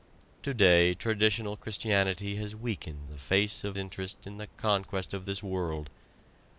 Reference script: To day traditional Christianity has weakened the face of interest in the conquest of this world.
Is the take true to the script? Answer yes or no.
yes